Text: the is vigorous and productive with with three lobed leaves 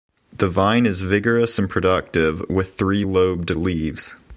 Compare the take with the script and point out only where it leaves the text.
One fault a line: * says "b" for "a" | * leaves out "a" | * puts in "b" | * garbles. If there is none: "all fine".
* puts in "vine"
* leaves out "with"